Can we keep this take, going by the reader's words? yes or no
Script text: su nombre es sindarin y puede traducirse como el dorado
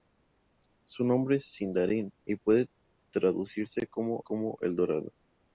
no